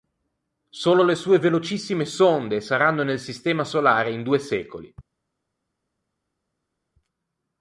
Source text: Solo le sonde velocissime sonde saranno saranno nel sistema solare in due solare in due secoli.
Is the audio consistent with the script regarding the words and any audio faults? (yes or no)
no